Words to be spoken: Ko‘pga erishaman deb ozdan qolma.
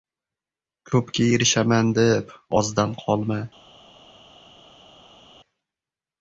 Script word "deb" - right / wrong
right